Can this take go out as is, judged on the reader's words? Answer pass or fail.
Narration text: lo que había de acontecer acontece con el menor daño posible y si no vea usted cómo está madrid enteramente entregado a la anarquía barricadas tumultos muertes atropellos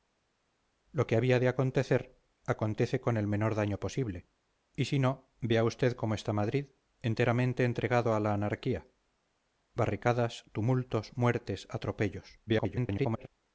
fail